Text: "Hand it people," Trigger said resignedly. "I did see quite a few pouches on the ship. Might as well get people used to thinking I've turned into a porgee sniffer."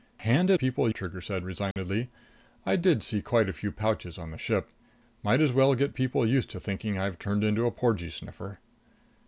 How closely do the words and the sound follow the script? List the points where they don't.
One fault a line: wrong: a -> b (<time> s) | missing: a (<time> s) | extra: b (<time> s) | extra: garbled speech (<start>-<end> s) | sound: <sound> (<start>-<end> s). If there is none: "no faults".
sound: dropout (1.7-1.8 s)